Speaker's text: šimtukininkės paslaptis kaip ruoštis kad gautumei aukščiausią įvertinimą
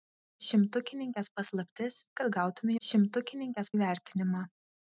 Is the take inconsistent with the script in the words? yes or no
yes